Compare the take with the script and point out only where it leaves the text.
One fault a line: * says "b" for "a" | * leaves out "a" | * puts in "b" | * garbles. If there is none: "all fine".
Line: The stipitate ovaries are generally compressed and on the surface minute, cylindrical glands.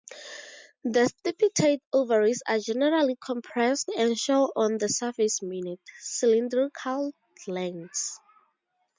* puts in "show"